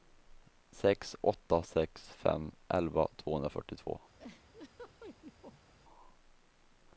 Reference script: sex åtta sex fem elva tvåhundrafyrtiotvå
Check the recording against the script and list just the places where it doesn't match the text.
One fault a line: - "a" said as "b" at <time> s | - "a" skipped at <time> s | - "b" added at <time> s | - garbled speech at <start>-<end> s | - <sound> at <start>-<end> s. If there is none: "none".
- laugh at 4.2-5.7 s